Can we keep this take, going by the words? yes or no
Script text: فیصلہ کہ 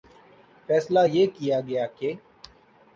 no